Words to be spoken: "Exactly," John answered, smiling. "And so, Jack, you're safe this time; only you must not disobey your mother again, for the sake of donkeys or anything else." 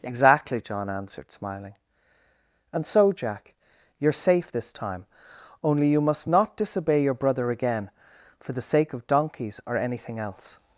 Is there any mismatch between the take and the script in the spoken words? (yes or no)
yes